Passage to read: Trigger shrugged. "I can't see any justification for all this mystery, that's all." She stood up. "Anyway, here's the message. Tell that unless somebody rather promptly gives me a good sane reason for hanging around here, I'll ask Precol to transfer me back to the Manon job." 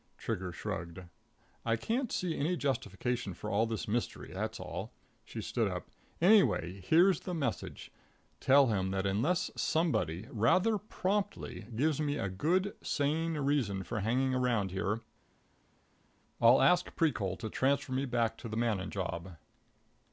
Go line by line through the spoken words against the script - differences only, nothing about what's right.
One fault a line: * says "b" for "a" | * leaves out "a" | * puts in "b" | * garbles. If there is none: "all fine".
* puts in "him"